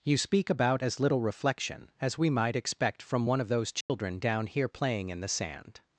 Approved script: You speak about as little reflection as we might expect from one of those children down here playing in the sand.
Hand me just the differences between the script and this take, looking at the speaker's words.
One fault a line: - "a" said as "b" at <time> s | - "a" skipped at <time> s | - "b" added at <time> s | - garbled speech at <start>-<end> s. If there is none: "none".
none